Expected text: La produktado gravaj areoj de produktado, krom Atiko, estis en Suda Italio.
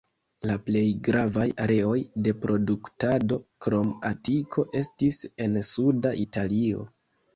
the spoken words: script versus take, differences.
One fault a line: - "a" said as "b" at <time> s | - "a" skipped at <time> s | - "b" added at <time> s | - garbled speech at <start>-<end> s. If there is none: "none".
- "produktado" said as "plej" at 0.7 s